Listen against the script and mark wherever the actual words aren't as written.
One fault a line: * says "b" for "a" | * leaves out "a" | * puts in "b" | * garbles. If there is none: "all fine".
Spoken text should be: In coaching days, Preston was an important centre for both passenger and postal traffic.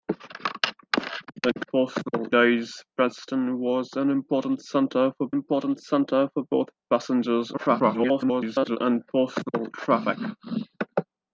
* says "postal" for "coaching"
* puts in "important centre for"
* garbles